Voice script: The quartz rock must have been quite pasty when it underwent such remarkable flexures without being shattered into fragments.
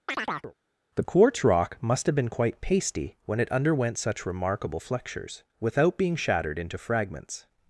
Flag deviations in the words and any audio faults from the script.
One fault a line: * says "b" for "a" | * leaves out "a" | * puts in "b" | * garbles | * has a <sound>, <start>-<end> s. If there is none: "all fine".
* has a chirp, 0.1-0.5 s